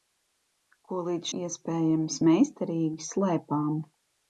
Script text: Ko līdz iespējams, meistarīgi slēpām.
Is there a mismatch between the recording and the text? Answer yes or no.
no